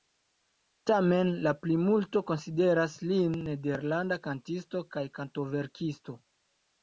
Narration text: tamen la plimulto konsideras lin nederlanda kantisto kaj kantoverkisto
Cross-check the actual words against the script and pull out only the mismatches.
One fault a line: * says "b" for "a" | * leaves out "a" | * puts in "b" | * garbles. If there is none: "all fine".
all fine